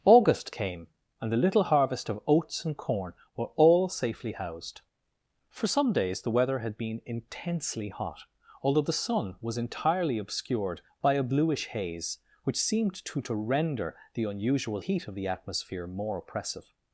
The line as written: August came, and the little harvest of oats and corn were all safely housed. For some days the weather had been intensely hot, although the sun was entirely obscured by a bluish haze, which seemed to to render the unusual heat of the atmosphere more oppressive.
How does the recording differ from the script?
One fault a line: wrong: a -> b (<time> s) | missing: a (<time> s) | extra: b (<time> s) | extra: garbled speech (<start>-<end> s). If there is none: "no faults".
no faults